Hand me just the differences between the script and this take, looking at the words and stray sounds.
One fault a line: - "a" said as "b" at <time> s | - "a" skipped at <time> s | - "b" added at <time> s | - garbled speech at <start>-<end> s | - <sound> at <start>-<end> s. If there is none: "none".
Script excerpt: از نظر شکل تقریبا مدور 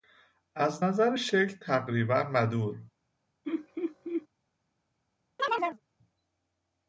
- laugh at 3.4-4.3 s
- chirp at 5.4-5.8 s